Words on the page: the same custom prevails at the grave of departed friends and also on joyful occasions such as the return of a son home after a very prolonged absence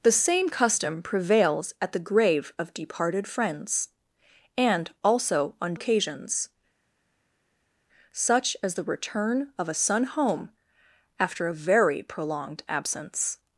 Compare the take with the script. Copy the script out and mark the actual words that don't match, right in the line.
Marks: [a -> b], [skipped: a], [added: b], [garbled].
the same custom prevails at the grave of departed friends and also on [skipped: joyful] occasions such as the return of a son home after a very prolonged absence